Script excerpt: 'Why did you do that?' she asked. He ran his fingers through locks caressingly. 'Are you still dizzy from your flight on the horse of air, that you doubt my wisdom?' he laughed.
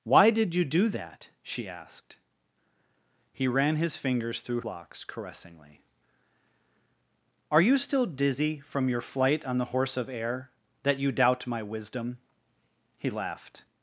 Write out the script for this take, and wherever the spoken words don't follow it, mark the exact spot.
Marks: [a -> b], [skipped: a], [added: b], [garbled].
'Why did you do that?' she asked. He ran his fingers through locks caressingly. 'Are you still dizzy from your flight on the horse of air, that you doubt my wisdom?' he laughed.